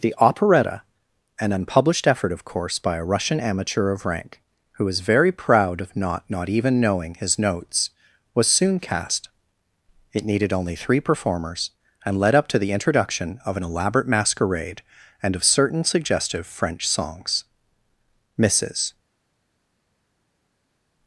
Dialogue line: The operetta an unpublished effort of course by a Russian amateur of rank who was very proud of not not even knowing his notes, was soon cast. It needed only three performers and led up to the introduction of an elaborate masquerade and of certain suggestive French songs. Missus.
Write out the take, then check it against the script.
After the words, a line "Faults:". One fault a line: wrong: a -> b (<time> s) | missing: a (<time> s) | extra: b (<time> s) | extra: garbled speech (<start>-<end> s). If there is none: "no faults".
The operetta an unpublished effort of course by a Russian amateur of rank who was very proud of not not even knowing his notes, was soon cast. It needed only three performers and led up to the introduction of an elaborate masquerade and of certain suggestive French songs. Missus.
Faults:
no faults